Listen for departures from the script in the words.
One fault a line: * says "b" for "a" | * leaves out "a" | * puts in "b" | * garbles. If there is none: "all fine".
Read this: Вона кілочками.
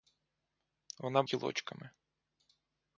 all fine